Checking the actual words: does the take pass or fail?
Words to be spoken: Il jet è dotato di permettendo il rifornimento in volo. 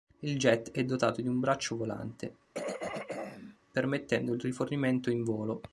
fail